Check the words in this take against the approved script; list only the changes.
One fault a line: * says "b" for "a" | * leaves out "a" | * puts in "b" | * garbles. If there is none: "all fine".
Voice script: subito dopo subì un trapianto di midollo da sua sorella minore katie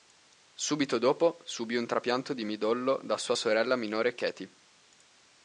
all fine